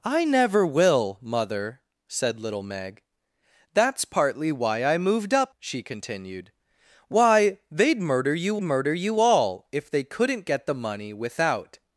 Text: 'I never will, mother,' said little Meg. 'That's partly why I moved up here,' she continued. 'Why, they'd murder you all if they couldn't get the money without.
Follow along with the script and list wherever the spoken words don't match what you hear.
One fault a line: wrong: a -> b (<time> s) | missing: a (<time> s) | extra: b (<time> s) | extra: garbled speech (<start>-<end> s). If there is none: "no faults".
missing: here (5.5 s)
extra: murder you (8.6 s)